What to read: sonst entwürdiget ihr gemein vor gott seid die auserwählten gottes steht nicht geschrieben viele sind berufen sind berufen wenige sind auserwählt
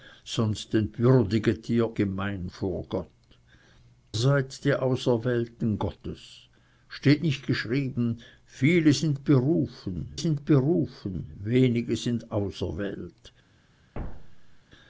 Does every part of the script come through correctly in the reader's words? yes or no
yes